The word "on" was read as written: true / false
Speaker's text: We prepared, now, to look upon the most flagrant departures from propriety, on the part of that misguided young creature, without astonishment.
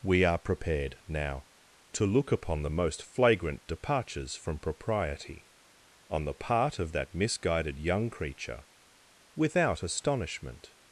true